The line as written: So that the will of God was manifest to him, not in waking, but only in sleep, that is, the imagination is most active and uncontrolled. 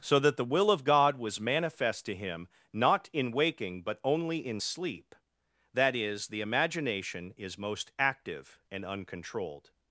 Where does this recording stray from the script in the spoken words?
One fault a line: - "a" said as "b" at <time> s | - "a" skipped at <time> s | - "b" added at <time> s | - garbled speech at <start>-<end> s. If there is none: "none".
none